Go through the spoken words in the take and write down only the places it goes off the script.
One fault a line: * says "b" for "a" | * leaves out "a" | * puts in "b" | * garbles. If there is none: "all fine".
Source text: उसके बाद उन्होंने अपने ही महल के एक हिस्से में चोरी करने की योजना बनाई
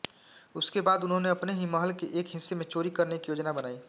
all fine